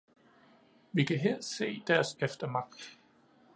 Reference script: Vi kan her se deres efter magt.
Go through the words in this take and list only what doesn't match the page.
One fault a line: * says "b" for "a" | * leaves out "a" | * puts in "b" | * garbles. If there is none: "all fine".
all fine